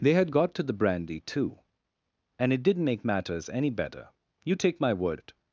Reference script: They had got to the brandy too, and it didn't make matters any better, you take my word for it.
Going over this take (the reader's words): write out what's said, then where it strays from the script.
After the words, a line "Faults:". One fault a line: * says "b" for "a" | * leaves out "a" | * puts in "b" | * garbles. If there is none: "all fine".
They had got to the brandy too, and it didn't make matters any better, you take my word it.
Faults:
* leaves out "for"